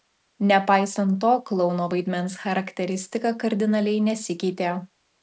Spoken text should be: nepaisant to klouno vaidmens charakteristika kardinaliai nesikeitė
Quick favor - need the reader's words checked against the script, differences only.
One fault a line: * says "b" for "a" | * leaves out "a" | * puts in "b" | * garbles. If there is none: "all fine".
all fine